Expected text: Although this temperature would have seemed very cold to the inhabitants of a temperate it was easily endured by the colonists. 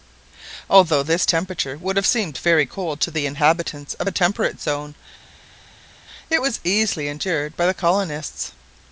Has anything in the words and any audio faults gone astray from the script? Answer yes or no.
yes